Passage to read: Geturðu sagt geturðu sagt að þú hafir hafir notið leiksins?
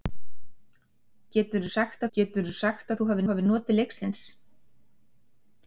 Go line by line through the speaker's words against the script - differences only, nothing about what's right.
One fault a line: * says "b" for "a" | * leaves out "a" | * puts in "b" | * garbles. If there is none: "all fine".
all fine